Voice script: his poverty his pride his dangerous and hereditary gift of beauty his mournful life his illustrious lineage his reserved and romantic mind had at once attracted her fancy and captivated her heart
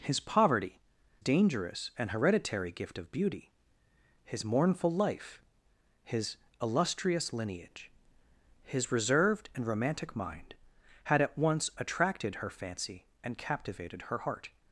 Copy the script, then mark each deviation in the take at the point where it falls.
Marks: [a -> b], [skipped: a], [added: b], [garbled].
his poverty [skipped: his pride his] dangerous and hereditary gift of beauty his mournful life his illustrious lineage his reserved and romantic mind had at once attracted her fancy and captivated her heart